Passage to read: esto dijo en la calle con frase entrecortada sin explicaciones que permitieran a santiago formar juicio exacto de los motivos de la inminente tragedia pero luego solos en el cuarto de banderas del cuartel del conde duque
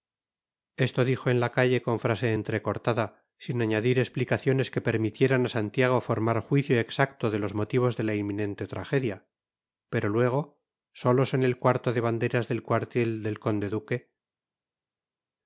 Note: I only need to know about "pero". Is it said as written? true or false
true